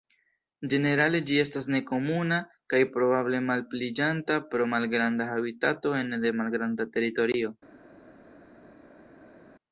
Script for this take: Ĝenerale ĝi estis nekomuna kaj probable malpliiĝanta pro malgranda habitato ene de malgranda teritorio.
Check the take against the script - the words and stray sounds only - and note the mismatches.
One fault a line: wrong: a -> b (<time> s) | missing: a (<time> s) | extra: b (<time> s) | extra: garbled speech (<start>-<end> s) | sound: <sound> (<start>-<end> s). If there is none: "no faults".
wrong: estis -> estas (1.4 s)